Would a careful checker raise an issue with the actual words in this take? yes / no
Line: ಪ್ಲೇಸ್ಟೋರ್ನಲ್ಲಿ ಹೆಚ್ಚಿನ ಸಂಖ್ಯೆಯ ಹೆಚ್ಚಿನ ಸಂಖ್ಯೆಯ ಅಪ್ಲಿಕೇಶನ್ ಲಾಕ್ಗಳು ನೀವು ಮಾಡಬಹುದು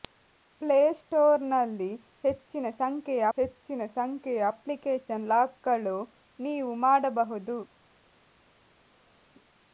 no